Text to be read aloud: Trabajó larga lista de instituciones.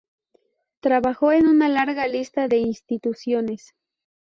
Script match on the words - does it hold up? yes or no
no